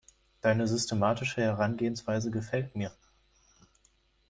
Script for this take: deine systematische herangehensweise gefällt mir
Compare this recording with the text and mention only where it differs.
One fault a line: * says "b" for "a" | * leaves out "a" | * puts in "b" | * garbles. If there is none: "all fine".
all fine